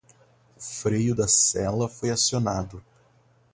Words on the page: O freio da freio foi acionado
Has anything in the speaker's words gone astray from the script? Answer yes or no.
yes